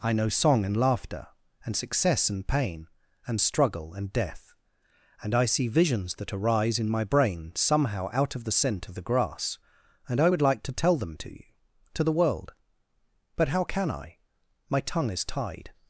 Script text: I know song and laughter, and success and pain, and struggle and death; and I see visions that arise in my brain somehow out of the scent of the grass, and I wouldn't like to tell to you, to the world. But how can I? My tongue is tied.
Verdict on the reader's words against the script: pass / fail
fail